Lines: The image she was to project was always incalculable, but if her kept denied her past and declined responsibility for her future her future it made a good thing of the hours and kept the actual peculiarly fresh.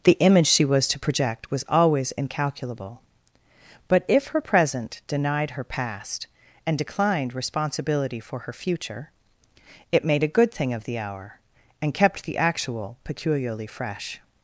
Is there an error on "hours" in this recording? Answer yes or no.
yes